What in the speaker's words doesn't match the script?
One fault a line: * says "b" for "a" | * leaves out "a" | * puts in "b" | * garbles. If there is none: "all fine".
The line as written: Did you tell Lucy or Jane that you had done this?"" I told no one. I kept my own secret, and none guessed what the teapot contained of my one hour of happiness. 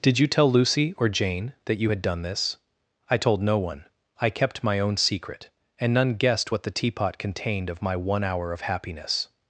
all fine